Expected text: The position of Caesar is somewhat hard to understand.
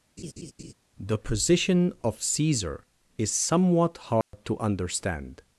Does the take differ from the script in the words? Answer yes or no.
no